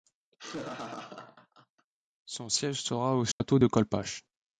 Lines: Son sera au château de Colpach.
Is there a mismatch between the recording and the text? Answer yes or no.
yes